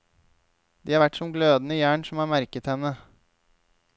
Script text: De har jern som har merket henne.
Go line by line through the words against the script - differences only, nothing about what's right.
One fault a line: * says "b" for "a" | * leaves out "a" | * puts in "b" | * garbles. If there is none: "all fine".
* puts in "vært som glødende"